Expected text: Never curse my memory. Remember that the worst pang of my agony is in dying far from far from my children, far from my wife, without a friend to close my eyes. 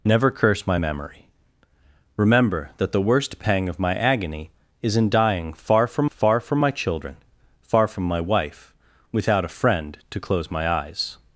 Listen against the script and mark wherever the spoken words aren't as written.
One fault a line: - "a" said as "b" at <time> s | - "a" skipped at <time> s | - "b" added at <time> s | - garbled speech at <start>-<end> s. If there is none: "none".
none